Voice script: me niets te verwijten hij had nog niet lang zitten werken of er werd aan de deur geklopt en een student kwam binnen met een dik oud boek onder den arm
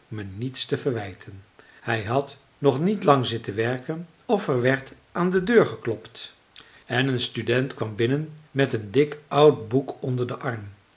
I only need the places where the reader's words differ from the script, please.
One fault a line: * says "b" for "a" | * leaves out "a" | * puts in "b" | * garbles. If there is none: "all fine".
all fine